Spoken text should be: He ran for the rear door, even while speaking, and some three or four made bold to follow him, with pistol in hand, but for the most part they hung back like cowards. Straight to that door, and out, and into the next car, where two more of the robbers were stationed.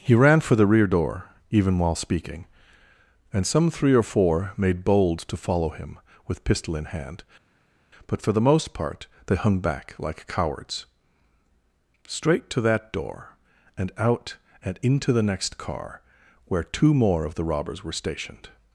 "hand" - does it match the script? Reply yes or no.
yes